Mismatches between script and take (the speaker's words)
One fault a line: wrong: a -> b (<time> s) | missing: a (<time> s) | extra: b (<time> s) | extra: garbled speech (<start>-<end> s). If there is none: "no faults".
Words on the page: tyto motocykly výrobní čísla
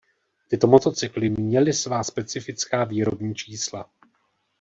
extra: měly svá specifická (1.3 s)